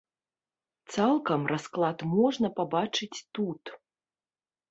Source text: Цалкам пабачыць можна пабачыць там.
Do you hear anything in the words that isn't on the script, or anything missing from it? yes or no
yes